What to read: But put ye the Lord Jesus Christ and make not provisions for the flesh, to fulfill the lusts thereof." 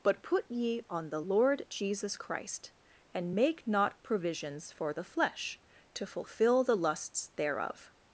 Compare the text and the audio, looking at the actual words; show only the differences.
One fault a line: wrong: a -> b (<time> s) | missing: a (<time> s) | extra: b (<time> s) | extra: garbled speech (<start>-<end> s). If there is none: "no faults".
extra: on (0.9 s)